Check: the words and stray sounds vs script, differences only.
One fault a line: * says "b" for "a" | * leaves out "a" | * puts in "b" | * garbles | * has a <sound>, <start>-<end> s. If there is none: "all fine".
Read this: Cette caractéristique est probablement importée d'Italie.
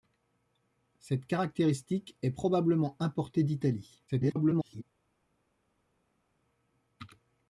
* garbles